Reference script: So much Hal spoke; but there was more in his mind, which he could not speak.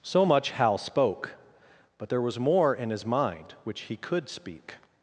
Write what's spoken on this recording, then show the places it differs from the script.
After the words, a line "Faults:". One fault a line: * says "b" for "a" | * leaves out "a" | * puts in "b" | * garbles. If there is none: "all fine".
So much Hal spoke; but there was more in his mind, which he could speak.
Faults:
* leaves out "not"